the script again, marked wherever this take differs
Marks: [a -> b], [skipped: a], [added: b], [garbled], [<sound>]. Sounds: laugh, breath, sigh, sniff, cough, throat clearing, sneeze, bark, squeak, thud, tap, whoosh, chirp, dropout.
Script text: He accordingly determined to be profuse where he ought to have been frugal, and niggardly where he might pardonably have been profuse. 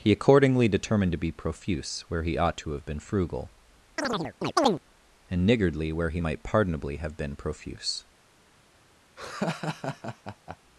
He accordingly determined to be profuse where he ought to have been frugal, [chirp] and niggardly where he might pardonably have been profuse. [laugh]